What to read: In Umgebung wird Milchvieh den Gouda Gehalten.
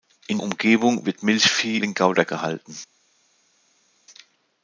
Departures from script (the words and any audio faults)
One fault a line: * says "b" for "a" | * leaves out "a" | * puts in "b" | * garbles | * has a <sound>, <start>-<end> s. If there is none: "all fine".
all fine